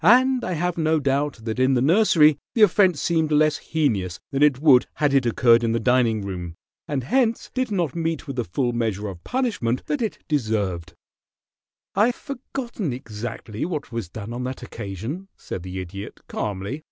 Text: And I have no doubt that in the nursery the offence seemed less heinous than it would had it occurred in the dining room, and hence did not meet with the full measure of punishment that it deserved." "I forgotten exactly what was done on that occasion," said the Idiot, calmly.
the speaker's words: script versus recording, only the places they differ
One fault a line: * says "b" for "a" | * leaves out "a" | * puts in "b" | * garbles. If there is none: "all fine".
all fine